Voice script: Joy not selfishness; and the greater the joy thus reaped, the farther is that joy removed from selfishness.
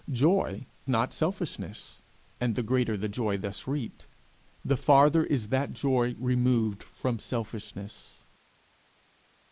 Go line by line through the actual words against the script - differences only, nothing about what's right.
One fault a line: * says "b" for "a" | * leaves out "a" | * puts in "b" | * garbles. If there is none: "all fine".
all fine